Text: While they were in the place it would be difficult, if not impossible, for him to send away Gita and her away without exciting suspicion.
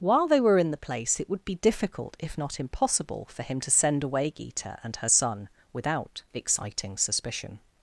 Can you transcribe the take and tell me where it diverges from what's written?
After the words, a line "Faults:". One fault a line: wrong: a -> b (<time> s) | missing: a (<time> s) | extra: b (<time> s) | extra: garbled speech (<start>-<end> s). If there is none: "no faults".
While they were in the place it would be difficult, if not impossible, for him to send away Gita and her son without exciting suspicion.
Faults:
wrong: away -> son (5.1 s)